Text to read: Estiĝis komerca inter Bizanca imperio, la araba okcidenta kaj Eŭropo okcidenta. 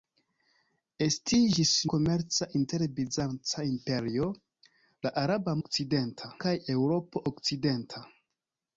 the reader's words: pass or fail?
pass